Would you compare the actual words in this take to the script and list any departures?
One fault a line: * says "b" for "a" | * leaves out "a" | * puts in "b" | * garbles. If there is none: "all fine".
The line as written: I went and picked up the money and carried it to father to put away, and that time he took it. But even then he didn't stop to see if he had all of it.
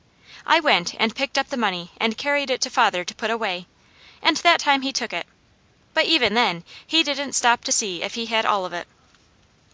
all fine